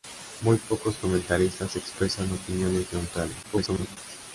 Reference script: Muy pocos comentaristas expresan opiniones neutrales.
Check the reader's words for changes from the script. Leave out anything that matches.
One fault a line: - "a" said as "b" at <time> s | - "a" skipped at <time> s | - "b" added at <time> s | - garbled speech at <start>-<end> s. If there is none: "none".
- garbled speech at 3.4-4.0 s